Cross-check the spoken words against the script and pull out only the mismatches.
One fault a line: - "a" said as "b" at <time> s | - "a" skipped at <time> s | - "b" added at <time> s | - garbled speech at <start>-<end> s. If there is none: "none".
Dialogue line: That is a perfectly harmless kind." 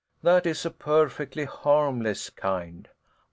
none